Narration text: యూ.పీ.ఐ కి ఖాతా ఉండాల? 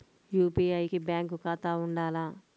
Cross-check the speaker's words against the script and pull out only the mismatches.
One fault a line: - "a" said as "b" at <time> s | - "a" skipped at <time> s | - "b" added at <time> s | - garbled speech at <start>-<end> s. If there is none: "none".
- "బ్యాంక్" added at 1.0 s